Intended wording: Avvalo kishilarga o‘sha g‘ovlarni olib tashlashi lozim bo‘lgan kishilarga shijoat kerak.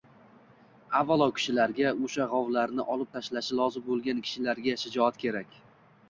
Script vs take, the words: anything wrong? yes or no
no